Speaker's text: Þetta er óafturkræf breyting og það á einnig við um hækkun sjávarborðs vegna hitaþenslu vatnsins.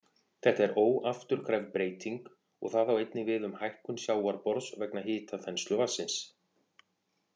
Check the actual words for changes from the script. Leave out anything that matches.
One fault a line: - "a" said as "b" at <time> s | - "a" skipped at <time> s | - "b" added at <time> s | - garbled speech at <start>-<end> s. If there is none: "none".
none